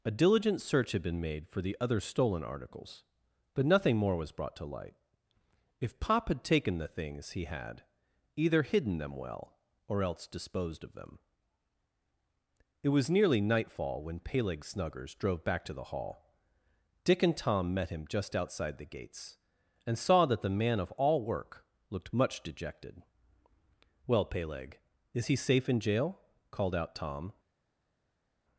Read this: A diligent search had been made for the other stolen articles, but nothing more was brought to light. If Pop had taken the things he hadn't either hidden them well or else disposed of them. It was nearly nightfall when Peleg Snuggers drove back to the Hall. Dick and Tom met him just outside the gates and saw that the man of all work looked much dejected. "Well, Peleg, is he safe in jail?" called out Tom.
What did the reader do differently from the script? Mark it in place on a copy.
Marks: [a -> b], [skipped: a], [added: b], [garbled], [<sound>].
A diligent search had been made for the other stolen articles, but nothing more was brought to light. If Pop had taken the things he [hadn't -> had] either hidden them well or else disposed of them. It was nearly nightfall when Peleg Snuggers drove back to the Hall. Dick and Tom met him just outside the gates and saw that the man of all work looked much dejected. "Well, Peleg, is he safe in jail?" called out Tom.